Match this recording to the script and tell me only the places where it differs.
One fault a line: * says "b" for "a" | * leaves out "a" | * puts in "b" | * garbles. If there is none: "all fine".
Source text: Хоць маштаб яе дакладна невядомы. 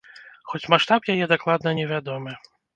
all fine